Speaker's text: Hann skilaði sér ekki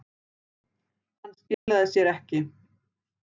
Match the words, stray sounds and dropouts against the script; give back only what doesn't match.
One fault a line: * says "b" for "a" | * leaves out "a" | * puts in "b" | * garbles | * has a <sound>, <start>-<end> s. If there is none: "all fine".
* has a dropout, 1.5-1.7 s